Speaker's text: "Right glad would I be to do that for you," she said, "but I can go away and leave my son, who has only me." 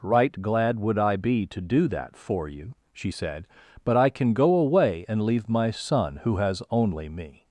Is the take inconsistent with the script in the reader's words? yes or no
no